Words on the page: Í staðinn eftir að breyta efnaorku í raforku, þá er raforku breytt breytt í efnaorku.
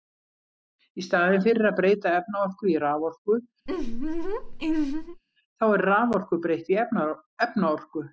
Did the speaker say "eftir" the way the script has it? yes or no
no